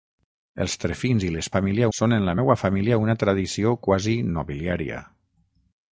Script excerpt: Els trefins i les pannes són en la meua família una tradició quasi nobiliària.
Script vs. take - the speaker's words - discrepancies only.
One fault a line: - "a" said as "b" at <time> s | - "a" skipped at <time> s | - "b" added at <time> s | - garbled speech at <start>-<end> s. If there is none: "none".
- "pannes" said as "família" at 1.6 s